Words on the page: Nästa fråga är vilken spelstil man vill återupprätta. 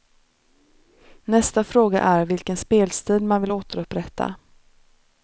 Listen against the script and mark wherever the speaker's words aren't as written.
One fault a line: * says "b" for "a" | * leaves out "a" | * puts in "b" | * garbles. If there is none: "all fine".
all fine